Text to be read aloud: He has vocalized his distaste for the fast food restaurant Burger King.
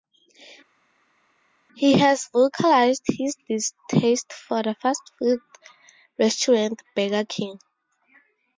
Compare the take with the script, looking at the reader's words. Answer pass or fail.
pass